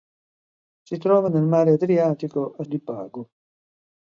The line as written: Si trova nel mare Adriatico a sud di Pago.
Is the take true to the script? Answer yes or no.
no